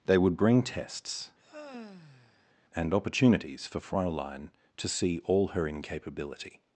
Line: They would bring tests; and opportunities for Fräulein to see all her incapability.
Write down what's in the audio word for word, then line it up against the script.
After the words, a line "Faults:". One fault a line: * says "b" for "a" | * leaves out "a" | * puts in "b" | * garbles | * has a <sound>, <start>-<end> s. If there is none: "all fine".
They would bring tests; and opportunities for Fräulein to see all her incapability.
Faults:
* has a sigh, 1.4-2.5 s